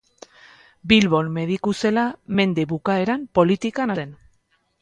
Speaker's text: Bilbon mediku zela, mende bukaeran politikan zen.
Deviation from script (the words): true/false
false